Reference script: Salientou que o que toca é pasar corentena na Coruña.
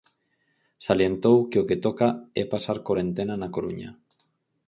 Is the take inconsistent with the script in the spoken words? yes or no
no